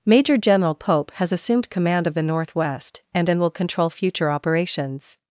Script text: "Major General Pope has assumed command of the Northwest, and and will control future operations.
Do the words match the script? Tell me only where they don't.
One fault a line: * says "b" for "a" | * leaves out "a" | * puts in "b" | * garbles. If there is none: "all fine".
all fine